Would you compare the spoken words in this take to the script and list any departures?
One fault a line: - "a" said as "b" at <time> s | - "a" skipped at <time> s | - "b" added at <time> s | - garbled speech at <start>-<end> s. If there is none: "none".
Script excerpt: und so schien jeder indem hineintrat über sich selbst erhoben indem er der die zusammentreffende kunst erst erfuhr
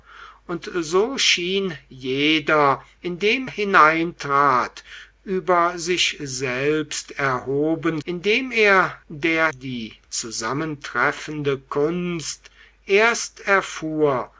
none